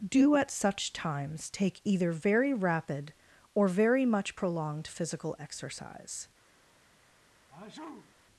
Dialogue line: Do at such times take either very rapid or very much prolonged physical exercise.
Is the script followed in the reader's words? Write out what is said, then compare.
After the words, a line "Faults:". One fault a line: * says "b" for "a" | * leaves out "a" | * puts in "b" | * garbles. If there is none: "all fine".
Do at such times take either very rapid or very much prolonged physical exercise.
Faults:
all fine